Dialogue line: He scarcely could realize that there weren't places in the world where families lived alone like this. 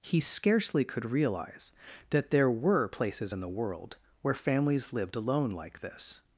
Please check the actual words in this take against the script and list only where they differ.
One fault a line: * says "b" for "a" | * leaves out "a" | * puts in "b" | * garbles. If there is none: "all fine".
* says "were" for "weren't"